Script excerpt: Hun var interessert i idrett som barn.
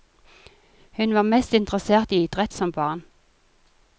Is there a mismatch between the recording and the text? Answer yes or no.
yes